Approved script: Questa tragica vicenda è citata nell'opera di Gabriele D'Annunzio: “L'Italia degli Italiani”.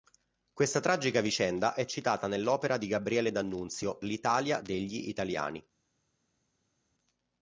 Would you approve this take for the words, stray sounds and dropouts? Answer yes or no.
yes